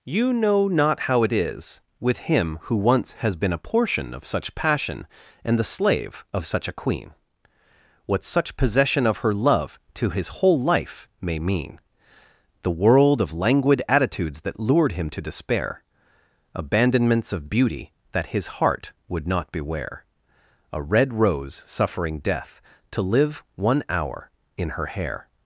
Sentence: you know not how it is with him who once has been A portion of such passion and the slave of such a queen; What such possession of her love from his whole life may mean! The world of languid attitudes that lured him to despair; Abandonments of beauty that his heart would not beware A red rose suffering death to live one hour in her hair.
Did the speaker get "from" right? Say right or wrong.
wrong